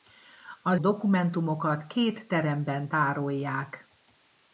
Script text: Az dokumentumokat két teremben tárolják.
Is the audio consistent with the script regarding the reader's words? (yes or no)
yes